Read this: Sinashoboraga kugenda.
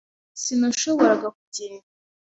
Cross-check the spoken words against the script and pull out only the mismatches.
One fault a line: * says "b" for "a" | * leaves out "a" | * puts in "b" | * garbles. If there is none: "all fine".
all fine